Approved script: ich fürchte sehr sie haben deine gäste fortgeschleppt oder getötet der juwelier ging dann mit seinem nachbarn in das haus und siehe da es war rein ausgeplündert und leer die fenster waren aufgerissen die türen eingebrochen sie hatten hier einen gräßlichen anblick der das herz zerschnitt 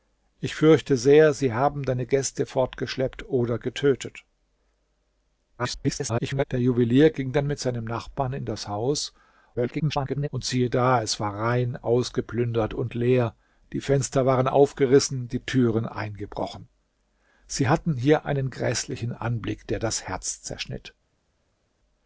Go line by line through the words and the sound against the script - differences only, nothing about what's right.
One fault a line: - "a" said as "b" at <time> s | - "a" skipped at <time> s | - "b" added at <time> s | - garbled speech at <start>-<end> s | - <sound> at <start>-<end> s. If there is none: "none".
- garbled speech at 5.6-6.4 s
- garbled speech at 9.5-10.3 s